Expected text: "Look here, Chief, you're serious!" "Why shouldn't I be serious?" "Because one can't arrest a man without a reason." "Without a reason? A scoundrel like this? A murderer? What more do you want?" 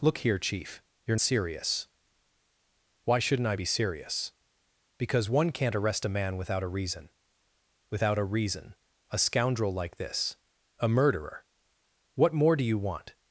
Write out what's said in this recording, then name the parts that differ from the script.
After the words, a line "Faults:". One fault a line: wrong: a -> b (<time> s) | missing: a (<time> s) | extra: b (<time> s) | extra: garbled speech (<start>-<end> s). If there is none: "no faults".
"Look here, Chief, you're serious!" "Why shouldn't I be serious?" "Because one can't arrest a man without a reason." "Without a reason? A scoundrel like this? A murderer? What more do you want?"
Faults:
no faults